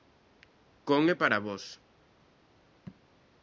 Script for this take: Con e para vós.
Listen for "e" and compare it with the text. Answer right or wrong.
right